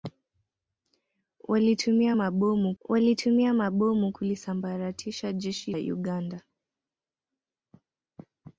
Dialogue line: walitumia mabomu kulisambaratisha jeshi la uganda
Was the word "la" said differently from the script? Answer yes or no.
yes